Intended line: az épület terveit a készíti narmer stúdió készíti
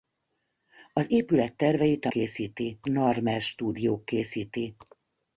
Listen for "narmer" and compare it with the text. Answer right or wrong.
right